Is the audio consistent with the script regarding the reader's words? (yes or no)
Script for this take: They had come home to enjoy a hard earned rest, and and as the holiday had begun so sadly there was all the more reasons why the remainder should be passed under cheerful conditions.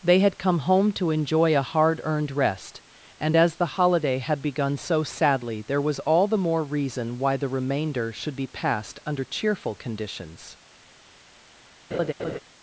no